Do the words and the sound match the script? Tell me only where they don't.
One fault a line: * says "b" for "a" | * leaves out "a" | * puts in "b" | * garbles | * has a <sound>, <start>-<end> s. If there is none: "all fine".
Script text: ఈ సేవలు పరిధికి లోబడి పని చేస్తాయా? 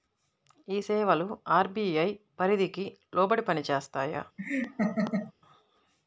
* puts in "అర్.బీ.ఐ"
* has a laugh, 4.4-5.3 s